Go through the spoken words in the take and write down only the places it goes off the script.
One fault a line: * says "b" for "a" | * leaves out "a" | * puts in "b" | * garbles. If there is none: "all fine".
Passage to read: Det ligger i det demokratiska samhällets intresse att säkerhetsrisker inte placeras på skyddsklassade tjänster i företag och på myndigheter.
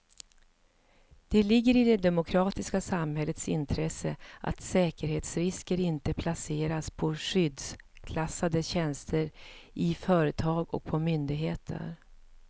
all fine